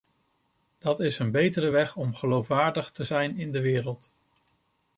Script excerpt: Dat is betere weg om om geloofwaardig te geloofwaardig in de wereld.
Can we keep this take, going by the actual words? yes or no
no